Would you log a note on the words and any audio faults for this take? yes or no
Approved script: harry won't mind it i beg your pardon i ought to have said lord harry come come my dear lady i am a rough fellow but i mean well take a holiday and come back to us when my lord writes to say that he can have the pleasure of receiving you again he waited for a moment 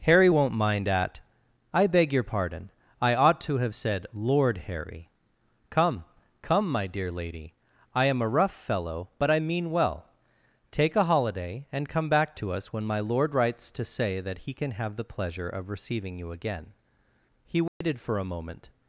yes